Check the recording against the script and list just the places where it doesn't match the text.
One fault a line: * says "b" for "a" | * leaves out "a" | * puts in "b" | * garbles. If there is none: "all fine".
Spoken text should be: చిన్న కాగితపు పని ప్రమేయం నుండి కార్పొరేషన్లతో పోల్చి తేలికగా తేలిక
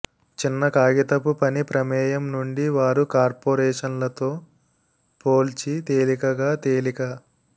* puts in "వారు"